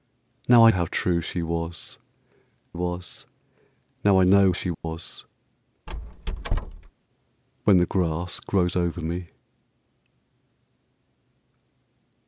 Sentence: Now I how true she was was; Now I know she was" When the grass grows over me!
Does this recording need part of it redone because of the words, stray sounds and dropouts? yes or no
yes